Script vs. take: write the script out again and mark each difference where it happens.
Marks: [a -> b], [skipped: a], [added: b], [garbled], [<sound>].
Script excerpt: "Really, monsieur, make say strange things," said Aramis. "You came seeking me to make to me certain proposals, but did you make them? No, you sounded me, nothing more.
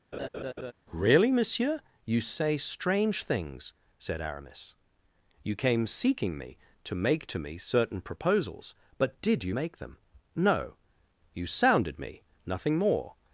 [laugh] "Really, monsieur, [make -> you] say strange things," said Aramis. "You came seeking me to make to me certain proposals, but did you make them? No, you sounded me, nothing more.